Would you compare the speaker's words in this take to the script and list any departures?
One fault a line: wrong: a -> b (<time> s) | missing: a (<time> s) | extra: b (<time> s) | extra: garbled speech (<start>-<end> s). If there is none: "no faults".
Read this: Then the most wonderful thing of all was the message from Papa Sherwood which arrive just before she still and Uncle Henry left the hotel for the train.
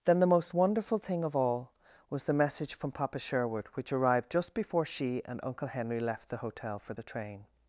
wrong: arrive -> arrived (3.9 s)
missing: still (5.2 s)